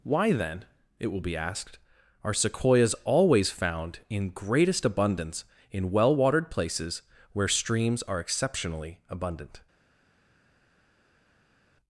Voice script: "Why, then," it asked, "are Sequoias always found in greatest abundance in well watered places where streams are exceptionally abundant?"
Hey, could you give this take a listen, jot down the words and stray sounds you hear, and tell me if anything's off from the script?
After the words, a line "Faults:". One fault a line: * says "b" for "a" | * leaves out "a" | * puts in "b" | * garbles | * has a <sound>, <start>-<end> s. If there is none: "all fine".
"Why, then," it will be asked, "are Sequoias always found in greatest abundance in well watered places where streams are exceptionally abundant?"
Faults:
* puts in "will be"